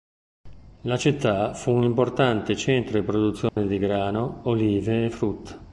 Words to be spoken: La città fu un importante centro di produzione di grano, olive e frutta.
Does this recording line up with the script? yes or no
yes